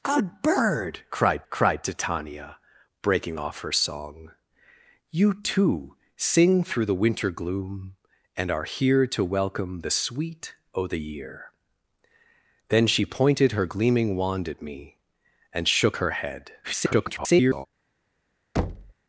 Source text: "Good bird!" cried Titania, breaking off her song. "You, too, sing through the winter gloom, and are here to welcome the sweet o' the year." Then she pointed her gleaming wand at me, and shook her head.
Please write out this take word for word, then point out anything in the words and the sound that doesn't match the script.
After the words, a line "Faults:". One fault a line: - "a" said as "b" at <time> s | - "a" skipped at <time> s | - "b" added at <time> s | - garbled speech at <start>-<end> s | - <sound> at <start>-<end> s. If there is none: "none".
"Good bird!" cried cried Titania, breaking off her song. "You, too, sing through the winter gloom, and are here to welcome the sweet o' the year." Then she pointed her gleaming wand at me, and shook her head. [garbled]
Faults:
- "cried" added at 1.5 s
- garbled speech at 16.6-17.7 s
- thud at 18.6-18.9 s